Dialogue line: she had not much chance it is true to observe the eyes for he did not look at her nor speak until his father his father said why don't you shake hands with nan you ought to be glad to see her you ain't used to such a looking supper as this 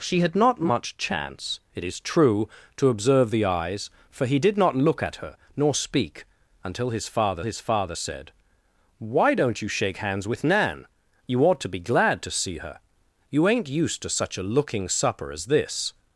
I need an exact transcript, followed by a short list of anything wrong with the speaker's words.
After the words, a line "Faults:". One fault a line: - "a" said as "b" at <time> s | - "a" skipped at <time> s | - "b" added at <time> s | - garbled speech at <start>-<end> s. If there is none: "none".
she had not much chance it is true to observe the eyes for he did not look at her nor speak until his father his father said why don't you shake hands with nan you ought to be glad to see her you ain't used to such a looking supper as this
Faults:
none